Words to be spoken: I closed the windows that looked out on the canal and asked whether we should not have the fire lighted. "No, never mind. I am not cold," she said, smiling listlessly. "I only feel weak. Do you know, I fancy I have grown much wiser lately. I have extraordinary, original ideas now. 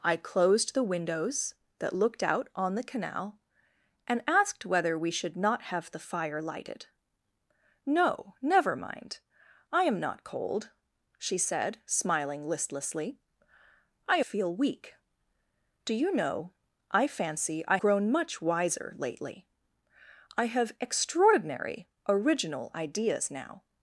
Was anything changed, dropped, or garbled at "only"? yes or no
yes